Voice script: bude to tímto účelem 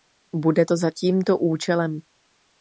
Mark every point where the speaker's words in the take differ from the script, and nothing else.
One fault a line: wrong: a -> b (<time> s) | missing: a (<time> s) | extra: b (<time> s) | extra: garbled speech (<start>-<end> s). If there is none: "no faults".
extra: za (0.8 s)